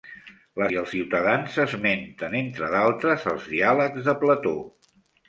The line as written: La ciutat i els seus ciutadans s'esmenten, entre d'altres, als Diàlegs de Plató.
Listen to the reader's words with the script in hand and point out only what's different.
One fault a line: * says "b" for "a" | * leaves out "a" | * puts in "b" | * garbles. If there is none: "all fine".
* leaves out "ciutat"
* leaves out "seus"